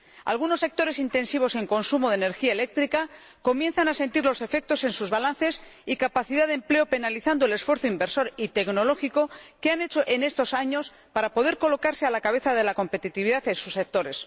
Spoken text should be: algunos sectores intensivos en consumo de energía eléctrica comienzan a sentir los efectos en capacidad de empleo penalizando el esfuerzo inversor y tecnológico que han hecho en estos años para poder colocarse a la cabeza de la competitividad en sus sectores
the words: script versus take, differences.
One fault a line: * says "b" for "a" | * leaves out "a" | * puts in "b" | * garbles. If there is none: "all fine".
* puts in "sus balances y"